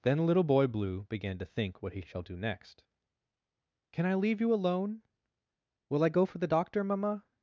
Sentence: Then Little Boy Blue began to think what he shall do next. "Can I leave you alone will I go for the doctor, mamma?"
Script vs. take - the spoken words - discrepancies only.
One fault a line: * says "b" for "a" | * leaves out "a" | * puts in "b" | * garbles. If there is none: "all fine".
all fine